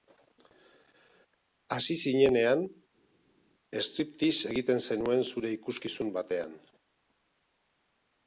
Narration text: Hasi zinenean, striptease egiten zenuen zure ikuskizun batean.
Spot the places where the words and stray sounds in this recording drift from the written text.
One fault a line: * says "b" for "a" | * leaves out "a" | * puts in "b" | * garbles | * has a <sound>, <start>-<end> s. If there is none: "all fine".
all fine